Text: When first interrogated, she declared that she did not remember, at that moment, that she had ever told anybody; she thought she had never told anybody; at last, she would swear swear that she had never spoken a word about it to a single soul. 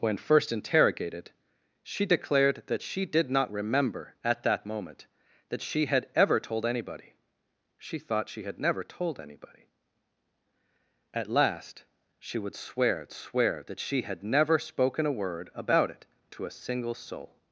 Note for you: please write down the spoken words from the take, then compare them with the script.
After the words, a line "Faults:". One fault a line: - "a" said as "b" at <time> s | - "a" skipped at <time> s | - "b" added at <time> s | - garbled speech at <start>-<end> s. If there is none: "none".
When first interrogated, she declared that she did not remember, at that moment, that she had ever told anybody; she thought she had never told anybody; at last, she would swear swear that she had never spoken a word about it to a single soul.
Faults:
none